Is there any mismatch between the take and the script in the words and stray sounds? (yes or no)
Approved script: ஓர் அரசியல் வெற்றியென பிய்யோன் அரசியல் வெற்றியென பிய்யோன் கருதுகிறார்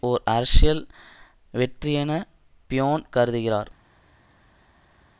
yes